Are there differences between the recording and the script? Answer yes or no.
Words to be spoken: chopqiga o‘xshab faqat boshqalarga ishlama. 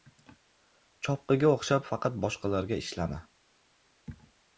no